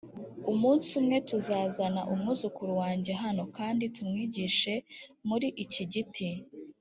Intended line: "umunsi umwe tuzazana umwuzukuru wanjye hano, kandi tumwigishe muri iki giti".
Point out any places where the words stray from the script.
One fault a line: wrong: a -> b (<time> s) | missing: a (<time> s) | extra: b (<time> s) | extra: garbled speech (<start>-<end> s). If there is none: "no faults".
no faults